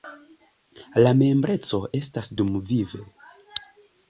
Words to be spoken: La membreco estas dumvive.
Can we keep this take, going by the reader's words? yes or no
yes